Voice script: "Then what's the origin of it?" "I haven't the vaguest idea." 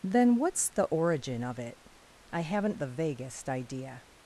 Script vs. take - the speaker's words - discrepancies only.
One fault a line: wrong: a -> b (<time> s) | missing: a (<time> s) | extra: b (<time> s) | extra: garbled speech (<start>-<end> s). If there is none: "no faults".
no faults